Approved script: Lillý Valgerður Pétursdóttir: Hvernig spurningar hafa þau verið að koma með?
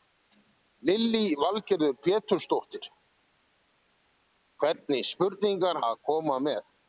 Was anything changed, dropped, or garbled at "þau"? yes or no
yes